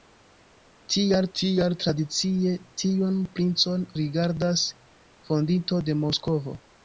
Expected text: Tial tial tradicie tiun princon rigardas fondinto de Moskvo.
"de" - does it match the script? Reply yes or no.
yes